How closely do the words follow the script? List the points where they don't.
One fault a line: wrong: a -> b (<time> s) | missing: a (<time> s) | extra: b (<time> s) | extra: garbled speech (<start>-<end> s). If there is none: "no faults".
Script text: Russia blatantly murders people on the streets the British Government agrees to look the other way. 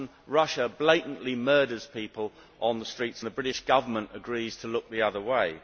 no faults